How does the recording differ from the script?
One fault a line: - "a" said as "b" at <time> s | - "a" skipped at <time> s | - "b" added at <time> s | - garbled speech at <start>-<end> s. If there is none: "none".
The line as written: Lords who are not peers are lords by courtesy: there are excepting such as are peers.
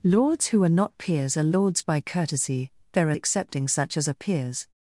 none